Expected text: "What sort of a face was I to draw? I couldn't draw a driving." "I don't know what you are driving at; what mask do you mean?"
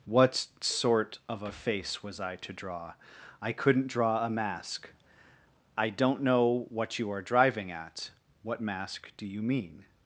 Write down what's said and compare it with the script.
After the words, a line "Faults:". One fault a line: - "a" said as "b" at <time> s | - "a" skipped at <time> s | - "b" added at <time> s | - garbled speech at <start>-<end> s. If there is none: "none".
"What sort of a face was I to draw? I couldn't draw a mask." "I don't know what you are driving at; what mask do you mean?"
Faults:
- "driving" said as "mask" at 4.3 s